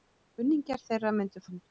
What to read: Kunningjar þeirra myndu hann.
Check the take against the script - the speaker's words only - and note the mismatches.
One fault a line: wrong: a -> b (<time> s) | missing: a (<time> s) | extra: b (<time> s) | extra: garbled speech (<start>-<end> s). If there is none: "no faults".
no faults